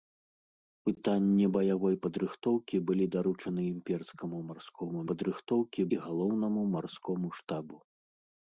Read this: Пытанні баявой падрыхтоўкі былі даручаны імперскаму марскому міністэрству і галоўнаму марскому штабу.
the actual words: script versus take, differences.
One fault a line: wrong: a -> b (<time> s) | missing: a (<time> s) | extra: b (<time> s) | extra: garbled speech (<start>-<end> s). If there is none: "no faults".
wrong: міністэрству -> падрыхтоўкі (5.1 s)